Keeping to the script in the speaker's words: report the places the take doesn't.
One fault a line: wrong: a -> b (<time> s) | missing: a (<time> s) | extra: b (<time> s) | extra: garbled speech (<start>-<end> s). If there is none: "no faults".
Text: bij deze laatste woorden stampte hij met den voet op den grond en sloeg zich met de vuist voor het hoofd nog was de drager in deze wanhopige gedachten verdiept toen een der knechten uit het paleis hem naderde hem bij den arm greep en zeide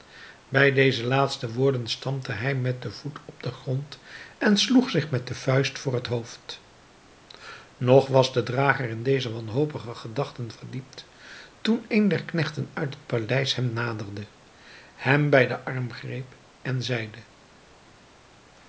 no faults